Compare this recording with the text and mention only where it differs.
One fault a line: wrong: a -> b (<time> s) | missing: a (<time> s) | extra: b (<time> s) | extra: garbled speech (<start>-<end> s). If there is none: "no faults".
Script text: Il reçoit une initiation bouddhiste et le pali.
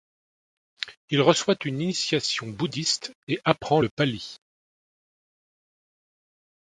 extra: apprend (3.4 s)